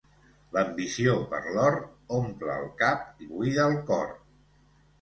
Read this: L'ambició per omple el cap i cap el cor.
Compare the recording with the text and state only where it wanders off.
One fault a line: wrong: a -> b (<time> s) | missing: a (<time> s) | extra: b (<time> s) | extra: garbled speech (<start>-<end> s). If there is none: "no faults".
extra: l'or (1.6 s)
wrong: cap -> buida (3.4 s)